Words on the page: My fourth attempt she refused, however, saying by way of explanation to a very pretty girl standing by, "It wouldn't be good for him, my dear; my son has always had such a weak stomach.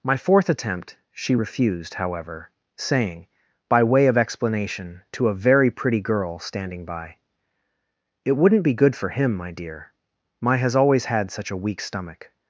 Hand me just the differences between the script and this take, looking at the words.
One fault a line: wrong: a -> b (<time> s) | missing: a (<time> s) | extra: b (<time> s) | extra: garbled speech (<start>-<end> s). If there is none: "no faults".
missing: son (10.6 s)